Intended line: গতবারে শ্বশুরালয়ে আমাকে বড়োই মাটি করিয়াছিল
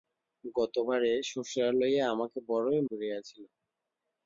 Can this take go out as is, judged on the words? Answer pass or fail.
fail